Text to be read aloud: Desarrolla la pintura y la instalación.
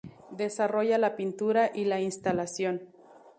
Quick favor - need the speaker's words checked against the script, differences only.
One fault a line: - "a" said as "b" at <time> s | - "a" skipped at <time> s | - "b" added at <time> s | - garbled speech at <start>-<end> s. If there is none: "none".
none